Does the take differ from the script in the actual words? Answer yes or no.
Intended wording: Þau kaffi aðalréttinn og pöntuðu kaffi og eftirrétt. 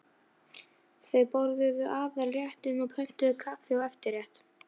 yes